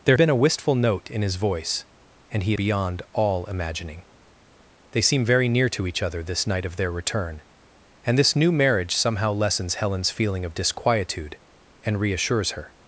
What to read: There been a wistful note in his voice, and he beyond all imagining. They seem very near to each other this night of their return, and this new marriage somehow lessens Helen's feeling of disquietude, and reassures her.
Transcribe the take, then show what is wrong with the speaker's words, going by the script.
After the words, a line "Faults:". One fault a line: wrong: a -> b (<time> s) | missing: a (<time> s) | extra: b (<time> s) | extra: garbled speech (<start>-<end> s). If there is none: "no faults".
There been a wistful note in his voice, and he beyond all imagining. They seem very near to each other this night of their return, and this new marriage somehow lessens Helen's feeling of disquietude, and reassures her.
Faults:
no faults